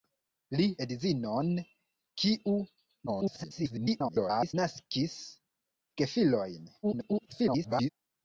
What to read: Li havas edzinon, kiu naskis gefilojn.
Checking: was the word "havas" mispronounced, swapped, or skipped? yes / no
yes